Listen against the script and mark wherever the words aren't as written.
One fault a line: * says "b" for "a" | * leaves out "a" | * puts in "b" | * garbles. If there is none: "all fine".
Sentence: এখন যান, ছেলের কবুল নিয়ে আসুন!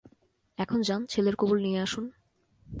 all fine